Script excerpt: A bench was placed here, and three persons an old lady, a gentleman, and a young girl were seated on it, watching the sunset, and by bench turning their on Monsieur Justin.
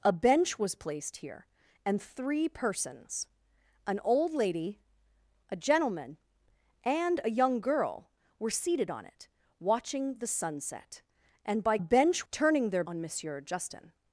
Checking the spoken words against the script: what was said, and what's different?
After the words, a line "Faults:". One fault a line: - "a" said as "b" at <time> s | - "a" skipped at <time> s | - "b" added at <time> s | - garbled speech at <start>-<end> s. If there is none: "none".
A bench was placed here, and three persons an old lady, a gentleman, and a young girl were seated on it, watching the sunset, and by bench turning their on Monsieur Justin.
Faults:
none